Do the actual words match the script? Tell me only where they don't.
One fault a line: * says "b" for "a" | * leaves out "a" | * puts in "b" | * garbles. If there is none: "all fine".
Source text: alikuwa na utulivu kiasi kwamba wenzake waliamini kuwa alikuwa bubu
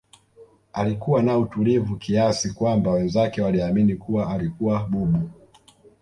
all fine